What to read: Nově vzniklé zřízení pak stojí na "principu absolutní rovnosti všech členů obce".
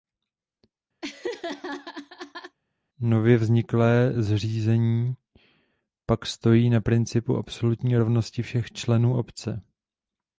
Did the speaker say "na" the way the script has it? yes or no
yes